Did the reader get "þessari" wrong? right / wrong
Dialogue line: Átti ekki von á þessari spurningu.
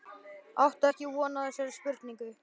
right